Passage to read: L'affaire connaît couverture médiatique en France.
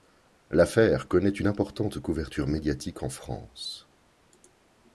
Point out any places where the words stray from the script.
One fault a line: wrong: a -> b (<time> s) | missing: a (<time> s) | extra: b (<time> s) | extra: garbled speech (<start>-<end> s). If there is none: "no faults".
extra: une importante (1.3 s)